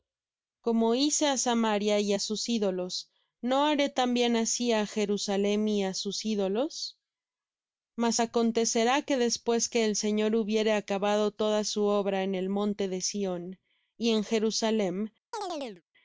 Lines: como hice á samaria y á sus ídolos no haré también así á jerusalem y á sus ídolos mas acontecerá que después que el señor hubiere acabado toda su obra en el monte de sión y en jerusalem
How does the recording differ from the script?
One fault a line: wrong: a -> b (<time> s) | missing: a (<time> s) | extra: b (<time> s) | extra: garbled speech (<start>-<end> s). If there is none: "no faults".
no faults